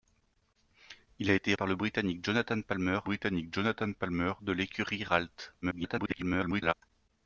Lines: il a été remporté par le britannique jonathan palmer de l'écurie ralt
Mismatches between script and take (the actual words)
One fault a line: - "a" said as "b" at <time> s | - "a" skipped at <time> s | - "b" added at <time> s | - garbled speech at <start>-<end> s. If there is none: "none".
- "remporté" skipped at 1.5 s
- "britannique jonathan palmer" added at 3.0 s
- garbled speech at 5.6-6.7 s